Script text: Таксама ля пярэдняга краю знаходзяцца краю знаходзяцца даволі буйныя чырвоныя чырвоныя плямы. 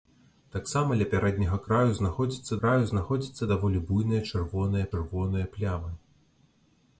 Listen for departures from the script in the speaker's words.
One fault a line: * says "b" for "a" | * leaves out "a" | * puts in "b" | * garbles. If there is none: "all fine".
all fine